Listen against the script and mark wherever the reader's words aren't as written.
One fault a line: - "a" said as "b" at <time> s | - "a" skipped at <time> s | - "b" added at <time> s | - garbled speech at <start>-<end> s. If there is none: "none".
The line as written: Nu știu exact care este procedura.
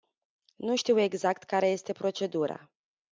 none